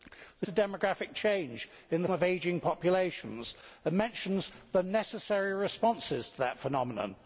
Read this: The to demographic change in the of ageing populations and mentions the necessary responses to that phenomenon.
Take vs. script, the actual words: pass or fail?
pass